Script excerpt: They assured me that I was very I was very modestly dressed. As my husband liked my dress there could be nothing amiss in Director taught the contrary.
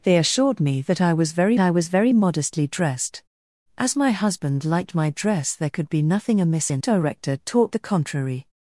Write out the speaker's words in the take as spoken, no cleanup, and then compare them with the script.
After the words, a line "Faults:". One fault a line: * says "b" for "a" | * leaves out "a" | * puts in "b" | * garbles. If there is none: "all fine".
They assured me that I was very I was very modestly dressed. As my husband liked my dress there could be nothing amiss in Director taught the contrary.
Faults:
all fine